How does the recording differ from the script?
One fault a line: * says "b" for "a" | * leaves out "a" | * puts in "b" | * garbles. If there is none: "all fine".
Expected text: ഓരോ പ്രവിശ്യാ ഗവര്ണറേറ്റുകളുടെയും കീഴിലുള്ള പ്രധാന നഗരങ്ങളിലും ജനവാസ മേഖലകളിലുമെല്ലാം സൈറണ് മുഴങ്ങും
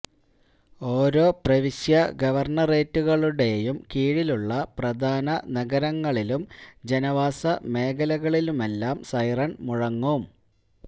all fine